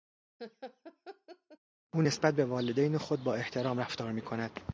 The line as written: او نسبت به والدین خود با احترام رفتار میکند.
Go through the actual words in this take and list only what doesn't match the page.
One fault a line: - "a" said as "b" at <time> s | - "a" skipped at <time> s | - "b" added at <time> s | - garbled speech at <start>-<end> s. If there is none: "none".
none